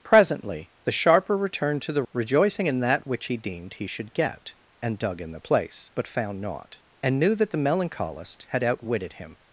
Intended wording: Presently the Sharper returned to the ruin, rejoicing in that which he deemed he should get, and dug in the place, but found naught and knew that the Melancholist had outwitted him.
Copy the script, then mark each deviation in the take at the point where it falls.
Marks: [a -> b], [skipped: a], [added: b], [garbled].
Presently the Sharper returned to the [skipped: ruin,] rejoicing in that which he deemed he should get, and dug in the place, but found naught and knew that the Melancholist had outwitted him.